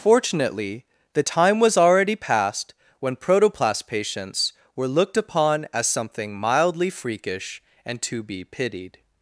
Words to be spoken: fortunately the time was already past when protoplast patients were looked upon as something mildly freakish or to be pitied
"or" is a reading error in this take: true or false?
true